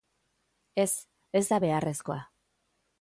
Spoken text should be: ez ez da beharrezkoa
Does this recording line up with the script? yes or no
yes